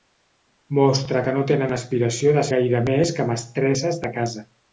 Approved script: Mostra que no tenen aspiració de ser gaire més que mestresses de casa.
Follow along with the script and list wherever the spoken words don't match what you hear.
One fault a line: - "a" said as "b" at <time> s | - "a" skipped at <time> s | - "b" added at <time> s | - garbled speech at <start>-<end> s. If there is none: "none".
- "ser" skipped at 2.5 s